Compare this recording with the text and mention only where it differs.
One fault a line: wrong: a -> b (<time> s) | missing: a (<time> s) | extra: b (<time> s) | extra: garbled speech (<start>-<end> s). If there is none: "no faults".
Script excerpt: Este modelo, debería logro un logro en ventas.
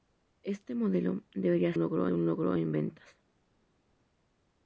no faults